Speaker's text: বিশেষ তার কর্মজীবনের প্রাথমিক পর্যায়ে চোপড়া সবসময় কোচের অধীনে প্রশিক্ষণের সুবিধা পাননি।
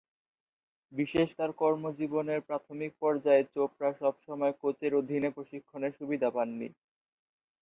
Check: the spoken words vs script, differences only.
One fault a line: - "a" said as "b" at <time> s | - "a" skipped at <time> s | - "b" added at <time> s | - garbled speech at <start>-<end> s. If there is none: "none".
none